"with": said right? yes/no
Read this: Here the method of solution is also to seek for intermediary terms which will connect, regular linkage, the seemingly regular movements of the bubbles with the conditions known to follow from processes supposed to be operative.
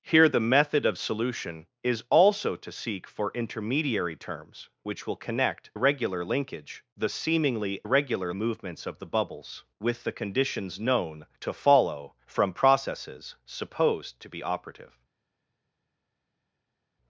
yes